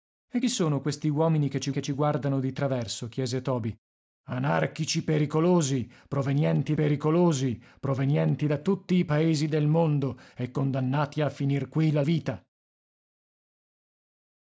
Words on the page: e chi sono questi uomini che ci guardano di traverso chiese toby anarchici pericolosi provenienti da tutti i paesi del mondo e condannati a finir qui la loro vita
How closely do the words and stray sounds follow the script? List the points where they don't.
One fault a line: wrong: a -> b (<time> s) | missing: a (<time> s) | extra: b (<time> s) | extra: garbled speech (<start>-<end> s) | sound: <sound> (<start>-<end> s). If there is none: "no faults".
extra: che ci (1.7 s)
extra: pericolosi provenienti (6.7 s)
missing: loro (12.0 s)